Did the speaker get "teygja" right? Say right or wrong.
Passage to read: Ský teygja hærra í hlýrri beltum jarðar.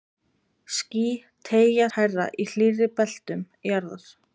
right